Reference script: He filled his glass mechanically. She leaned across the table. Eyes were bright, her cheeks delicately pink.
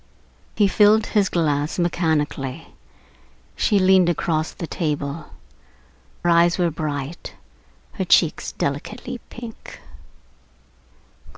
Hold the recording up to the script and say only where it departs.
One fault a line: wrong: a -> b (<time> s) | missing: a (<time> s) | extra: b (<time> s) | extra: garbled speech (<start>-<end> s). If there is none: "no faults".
no faults